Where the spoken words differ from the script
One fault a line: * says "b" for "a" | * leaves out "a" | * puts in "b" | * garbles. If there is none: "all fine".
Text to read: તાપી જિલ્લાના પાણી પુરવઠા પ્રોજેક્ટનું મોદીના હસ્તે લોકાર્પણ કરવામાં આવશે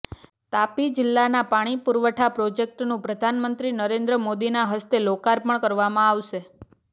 * puts in "પ્રધાનમંત્રી નરેન્દ્ર"